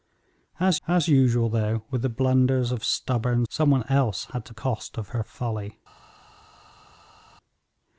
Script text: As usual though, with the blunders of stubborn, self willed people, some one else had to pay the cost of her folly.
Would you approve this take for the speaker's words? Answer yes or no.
no